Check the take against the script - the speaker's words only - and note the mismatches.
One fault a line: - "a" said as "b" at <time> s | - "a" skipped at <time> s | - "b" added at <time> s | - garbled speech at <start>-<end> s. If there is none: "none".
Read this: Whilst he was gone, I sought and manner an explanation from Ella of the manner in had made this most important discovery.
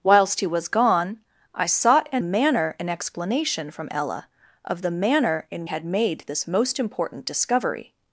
none